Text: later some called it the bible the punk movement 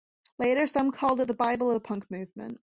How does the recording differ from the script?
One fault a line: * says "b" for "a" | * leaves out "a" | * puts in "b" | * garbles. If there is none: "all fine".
all fine